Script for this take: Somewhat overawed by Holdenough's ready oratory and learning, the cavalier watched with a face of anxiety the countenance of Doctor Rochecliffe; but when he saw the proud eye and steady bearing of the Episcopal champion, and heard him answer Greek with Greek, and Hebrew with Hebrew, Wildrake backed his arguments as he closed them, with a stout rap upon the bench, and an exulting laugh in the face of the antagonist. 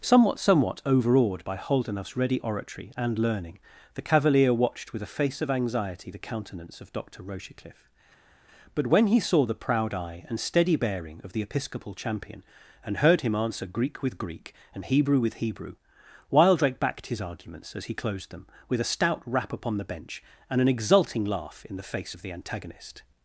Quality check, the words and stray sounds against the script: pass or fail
fail